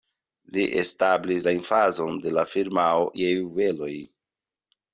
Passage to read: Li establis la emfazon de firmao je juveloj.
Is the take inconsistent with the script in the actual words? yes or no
yes